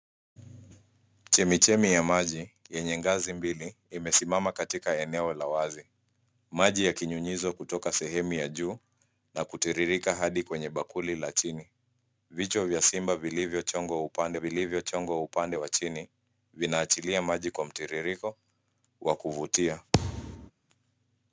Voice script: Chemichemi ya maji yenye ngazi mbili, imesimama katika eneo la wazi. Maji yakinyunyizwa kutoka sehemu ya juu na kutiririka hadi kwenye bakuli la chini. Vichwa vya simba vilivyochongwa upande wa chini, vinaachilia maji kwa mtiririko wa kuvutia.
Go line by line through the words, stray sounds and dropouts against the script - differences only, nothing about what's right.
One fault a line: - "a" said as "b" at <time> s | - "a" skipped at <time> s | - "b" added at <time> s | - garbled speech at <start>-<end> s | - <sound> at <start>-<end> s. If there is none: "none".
- "vilivyochongwa upande" added at 14.3 s
- thud at 19.9-20.5 s